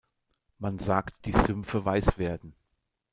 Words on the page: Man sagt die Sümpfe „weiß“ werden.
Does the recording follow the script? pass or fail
pass